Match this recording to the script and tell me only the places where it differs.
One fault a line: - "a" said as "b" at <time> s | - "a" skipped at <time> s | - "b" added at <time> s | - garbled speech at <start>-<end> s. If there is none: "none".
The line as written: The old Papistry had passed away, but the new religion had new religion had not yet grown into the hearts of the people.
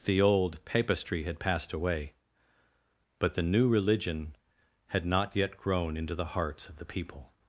- "new religion had" skipped at 5.1 s